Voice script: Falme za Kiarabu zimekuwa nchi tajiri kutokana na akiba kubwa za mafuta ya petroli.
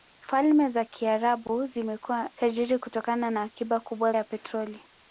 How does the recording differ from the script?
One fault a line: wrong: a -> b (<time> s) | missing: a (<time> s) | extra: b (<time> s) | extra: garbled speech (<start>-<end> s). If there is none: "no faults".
missing: nchi (2.3 s)
missing: za mafuta (4.1 s)